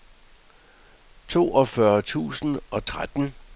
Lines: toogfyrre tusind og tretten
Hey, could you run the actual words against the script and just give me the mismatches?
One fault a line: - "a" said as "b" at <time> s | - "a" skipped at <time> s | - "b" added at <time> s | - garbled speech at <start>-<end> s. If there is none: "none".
none